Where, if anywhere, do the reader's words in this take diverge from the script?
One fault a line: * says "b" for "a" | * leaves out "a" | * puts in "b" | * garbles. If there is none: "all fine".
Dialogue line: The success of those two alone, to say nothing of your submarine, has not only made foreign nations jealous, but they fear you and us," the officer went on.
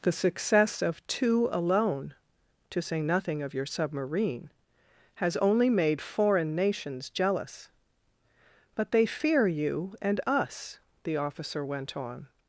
* leaves out "those"
* leaves out "not"